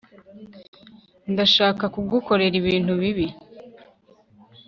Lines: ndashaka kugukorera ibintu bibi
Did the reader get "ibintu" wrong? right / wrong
right